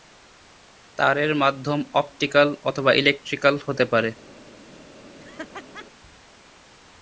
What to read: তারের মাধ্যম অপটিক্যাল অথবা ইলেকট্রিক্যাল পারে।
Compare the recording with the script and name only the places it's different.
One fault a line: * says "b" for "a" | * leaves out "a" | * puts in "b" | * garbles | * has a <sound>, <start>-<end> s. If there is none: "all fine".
* puts in "হতে"
* has a laugh, 5.2-5.9 s